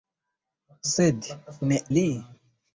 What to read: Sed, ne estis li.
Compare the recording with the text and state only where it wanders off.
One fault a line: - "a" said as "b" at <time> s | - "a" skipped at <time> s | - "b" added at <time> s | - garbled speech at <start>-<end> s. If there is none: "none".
- "estis" skipped at 1.8 s